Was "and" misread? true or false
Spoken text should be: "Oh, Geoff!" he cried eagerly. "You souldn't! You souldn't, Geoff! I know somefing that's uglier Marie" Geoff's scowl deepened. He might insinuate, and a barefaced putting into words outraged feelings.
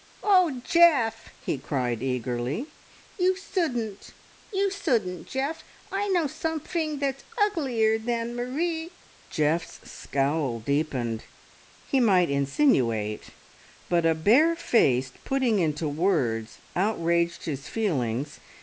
true